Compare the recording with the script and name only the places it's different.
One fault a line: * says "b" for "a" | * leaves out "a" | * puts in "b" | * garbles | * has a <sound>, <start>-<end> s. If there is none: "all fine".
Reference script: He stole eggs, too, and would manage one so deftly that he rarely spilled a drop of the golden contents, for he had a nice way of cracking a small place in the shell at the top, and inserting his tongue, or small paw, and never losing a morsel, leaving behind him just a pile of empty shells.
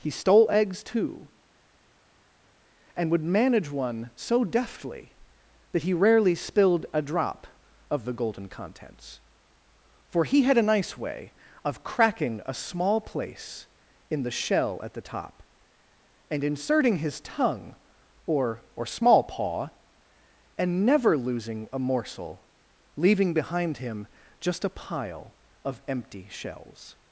* puts in "or"